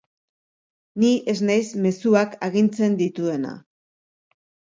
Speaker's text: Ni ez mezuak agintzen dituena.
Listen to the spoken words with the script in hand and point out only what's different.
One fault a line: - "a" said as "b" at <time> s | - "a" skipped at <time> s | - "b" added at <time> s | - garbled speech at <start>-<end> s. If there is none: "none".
- "naiz" added at 1.5 s